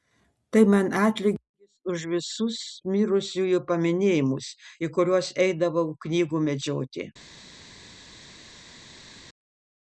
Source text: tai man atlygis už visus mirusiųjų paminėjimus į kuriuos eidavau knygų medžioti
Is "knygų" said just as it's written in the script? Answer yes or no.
yes